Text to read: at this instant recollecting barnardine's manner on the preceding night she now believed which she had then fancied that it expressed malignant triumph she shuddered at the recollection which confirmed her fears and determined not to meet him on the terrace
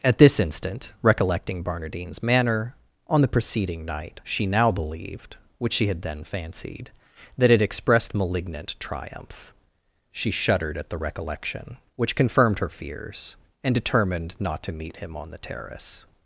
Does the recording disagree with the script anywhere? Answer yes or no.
no